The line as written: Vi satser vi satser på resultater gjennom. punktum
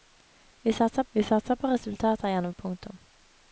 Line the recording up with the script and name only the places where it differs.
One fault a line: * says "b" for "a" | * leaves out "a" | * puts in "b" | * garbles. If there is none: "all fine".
all fine